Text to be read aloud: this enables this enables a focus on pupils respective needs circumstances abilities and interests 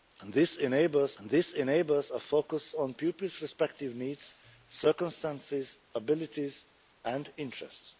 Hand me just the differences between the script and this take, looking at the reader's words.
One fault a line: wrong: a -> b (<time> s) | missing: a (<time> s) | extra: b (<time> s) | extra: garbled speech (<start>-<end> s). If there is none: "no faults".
no faults